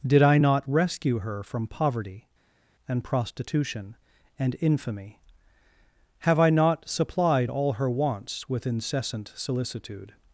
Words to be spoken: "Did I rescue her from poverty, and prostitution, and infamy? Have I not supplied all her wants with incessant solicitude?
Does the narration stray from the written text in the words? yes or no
yes